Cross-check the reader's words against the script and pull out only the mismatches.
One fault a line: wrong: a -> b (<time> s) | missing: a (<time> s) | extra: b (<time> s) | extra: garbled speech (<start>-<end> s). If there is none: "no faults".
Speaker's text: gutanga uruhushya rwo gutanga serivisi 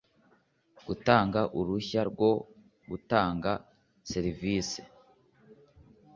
no faults